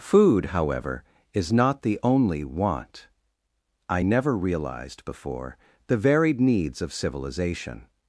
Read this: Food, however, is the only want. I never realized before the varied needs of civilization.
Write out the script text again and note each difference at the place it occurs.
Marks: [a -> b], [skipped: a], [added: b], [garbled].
Food, however, is [added: not] the only want. I never realized before the varied needs of civilization.